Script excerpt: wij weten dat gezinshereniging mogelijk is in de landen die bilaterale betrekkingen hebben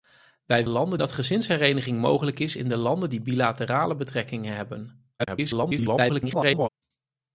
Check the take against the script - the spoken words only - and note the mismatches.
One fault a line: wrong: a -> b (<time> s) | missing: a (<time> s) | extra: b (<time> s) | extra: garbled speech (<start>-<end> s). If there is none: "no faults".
wrong: weten -> landen (0.7 s)
extra: garbled speech (5.2-6.7 s)